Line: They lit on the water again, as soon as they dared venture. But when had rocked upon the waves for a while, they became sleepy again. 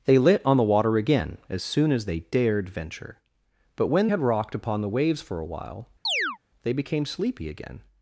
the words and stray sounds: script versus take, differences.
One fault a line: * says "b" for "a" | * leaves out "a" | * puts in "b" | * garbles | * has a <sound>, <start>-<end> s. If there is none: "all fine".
* has a chirp, 6.0-6.4 s